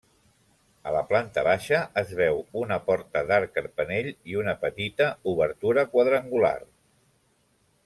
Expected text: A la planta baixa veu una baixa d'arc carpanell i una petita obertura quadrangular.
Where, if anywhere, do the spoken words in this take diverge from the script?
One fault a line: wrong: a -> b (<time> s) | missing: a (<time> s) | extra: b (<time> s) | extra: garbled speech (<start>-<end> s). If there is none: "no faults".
extra: es (2.0 s)
wrong: baixa -> porta (2.9 s)